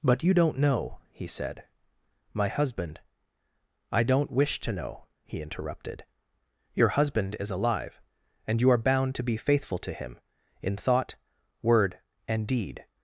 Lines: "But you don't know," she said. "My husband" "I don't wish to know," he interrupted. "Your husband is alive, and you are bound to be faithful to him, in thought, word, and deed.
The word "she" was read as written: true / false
false